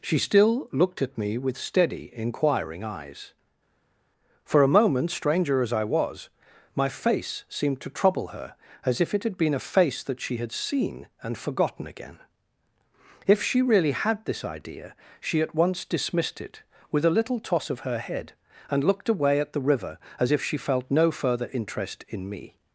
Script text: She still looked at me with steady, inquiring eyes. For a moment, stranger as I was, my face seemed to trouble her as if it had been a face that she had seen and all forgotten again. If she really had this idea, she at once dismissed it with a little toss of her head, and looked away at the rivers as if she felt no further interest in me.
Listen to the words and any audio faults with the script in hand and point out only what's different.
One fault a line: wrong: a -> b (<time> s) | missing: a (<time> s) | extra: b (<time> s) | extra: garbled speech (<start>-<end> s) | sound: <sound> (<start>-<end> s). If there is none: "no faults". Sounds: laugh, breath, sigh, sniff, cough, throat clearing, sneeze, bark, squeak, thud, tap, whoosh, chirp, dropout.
missing: all (11.4 s)
wrong: rivers -> river (19.6 s)